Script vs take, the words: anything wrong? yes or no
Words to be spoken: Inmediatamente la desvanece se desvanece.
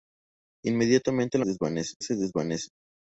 no